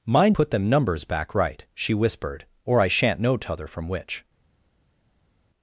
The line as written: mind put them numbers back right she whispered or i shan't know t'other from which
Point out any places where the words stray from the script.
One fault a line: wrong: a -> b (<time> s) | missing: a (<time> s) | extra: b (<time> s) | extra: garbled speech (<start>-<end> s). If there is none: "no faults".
no faults